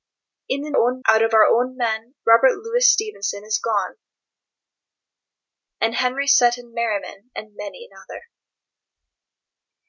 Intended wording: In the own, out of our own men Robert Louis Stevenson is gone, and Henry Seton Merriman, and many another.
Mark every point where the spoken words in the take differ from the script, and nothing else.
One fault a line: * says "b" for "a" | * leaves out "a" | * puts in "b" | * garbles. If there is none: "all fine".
all fine